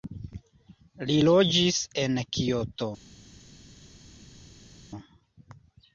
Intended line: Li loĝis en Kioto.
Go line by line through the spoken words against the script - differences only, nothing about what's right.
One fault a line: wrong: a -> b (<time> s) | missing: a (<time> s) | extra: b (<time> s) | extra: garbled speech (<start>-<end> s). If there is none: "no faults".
no faults